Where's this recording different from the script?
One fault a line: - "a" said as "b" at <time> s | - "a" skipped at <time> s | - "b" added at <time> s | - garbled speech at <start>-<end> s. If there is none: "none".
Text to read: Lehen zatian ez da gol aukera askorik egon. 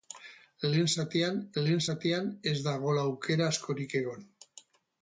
- "lehen zatian" added at 1.6 s